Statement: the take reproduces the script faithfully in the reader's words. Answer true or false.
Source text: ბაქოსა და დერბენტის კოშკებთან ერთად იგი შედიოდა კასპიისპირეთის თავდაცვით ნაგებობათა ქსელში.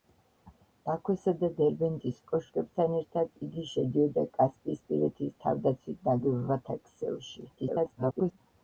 false